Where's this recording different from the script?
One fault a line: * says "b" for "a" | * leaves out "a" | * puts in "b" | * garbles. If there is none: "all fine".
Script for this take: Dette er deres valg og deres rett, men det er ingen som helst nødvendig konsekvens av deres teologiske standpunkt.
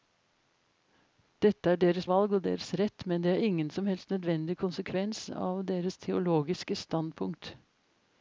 all fine